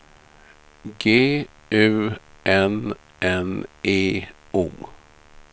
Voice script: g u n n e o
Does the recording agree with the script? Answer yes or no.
yes